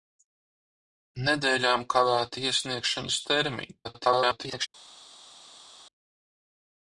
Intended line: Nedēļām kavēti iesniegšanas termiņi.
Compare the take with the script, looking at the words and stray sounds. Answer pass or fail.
fail